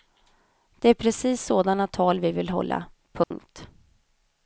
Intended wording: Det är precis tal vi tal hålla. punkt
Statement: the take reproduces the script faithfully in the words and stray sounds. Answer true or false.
false